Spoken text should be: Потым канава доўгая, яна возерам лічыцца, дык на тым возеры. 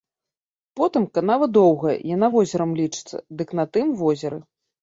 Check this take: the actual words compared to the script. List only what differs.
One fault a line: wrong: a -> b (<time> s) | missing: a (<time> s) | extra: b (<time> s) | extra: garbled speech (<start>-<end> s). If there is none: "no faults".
no faults